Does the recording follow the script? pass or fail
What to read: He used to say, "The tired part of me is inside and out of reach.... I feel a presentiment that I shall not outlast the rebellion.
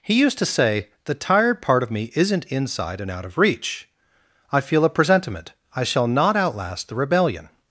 fail